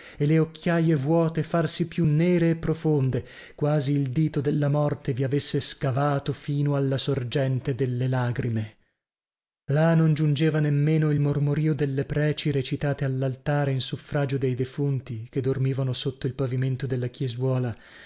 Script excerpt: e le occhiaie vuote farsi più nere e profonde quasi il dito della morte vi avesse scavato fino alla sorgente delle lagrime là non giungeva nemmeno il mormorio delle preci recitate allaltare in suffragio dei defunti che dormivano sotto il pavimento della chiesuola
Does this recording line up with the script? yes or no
yes